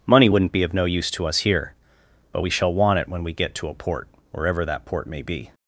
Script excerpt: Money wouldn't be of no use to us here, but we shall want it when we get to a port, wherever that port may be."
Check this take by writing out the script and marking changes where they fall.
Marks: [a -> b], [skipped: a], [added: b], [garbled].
Money wouldn't be of no use to us here, but we shall want it when we get to a port, wherever that port may be."